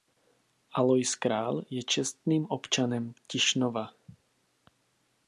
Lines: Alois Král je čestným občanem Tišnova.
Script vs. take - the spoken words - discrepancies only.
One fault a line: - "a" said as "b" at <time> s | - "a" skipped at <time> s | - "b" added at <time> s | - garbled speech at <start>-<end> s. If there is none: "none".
none